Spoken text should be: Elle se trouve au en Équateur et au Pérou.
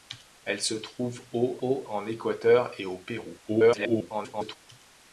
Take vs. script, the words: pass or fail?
fail